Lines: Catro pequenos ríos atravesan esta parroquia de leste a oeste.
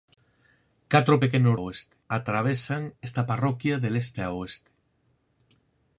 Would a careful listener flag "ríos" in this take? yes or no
yes